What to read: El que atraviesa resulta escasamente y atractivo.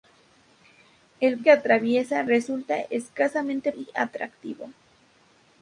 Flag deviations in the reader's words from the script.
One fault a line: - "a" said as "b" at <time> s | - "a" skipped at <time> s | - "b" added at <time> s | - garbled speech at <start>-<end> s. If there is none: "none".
none